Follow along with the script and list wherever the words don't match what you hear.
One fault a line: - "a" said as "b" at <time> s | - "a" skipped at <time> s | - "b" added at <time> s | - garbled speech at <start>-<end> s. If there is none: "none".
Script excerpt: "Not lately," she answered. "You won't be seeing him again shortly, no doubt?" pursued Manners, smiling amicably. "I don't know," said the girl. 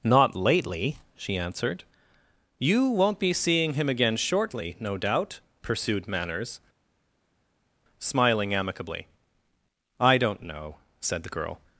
none